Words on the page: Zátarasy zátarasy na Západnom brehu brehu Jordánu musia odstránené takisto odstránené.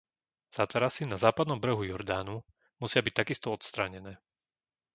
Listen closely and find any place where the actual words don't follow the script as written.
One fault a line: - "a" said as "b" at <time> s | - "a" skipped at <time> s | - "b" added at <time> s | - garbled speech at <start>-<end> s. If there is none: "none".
- "zátarasy" skipped at 1.1 s
- "brehu" skipped at 1.9 s
- "odstránené" said as "byť" at 3.0 s